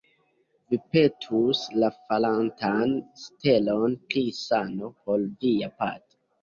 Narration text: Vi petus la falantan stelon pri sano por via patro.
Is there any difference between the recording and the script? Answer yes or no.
no